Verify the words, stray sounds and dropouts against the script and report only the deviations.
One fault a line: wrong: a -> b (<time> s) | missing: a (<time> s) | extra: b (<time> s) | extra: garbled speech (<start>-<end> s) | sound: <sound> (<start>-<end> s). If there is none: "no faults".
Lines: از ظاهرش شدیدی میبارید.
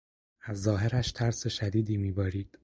extra: ترس (1.1 s)